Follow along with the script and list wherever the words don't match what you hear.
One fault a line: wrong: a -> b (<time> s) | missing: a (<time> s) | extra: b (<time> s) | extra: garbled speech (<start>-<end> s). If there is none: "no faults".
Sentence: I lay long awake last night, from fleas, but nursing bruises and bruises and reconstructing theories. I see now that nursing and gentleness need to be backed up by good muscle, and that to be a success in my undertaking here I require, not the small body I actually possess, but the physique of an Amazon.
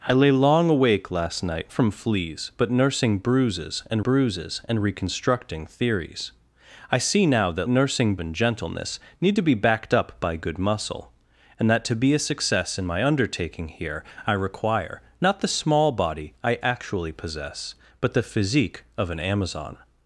no faults